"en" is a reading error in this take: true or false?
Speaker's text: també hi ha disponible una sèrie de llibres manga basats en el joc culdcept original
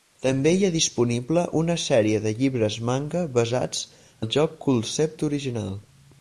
true